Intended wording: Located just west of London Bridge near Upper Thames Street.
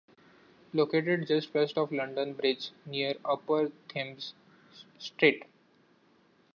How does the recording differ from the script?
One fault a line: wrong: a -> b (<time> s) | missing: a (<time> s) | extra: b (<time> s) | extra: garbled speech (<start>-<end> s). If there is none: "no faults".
no faults